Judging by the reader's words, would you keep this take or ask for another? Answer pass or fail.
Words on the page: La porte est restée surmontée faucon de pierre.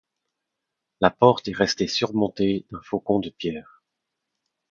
fail